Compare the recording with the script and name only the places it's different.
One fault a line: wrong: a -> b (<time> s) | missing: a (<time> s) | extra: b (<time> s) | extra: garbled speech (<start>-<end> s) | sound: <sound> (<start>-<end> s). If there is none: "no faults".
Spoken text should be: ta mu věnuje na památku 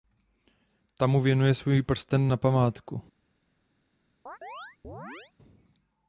extra: svůj prsten (1.5 s)
sound: chirp (4.3-5.3 s)